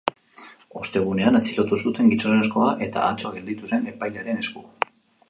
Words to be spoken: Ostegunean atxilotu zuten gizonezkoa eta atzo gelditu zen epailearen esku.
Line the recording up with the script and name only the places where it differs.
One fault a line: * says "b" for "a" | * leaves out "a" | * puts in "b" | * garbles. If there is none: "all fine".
all fine